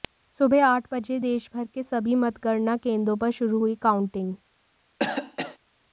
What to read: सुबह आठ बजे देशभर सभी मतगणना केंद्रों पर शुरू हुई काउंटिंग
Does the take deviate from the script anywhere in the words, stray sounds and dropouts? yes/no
yes